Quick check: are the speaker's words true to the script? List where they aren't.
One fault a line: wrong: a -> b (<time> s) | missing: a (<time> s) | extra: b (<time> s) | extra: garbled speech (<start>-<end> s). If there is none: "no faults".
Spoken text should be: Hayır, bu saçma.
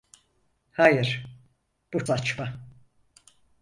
no faults